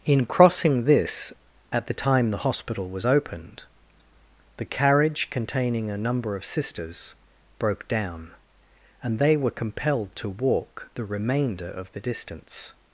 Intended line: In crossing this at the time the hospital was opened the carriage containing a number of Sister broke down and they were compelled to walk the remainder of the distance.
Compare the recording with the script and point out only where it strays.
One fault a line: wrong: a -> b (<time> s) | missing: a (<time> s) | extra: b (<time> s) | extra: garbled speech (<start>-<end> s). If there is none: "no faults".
wrong: Sister -> Sisters (6.4 s)